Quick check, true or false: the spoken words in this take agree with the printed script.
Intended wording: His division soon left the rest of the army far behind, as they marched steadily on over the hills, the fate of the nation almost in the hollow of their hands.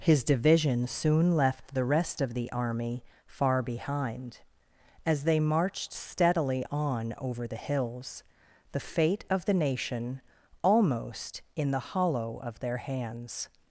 true